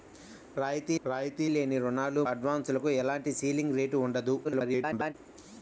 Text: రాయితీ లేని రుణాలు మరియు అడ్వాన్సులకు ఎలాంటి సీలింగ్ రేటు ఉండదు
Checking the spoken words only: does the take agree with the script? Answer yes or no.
no